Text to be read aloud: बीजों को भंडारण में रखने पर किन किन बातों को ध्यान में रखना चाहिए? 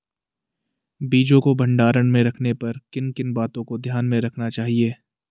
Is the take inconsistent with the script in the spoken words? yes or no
no